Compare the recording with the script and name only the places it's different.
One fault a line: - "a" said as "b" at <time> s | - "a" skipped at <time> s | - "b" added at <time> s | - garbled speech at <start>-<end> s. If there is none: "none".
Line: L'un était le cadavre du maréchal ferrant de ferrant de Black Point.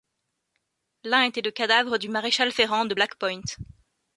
- "ferrant de" skipped at 3.0 s